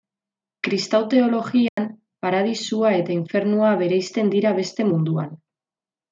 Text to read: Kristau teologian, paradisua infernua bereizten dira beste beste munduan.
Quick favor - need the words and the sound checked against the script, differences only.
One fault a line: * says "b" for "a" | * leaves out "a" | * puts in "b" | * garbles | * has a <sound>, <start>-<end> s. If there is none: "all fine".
* has a dropout, 1.7-1.8 s
* puts in "eta"
* leaves out "beste"